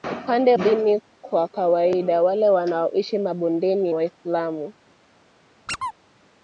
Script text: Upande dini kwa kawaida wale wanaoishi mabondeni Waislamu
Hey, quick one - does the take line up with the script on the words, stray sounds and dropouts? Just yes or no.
no